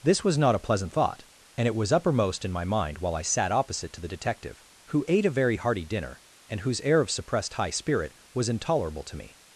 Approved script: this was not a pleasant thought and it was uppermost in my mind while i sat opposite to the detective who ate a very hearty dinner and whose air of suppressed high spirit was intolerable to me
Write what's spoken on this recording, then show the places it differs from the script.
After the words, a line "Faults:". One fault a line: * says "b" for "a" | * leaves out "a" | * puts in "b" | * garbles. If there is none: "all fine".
this was not a pleasant thought and it was uppermost in my mind while i sat opposite to the detective who ate a very hearty dinner and whose air of suppressed high spirit was intolerable to me
Faults:
all fine